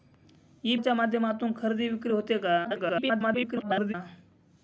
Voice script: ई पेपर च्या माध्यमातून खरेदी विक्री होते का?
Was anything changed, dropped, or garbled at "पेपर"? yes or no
yes